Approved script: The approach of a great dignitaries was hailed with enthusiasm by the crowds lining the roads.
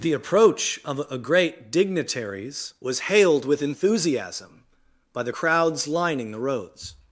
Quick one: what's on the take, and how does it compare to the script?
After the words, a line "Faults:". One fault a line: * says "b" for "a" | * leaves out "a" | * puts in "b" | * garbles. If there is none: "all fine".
The approach of a great dignitaries was hailed with enthusiasm by the crowds lining the roads.
Faults:
all fine